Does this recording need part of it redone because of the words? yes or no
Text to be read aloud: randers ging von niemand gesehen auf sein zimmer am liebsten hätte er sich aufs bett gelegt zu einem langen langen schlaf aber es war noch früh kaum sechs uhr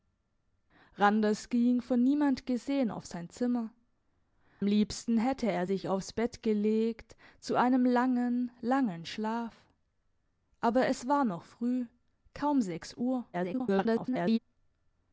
yes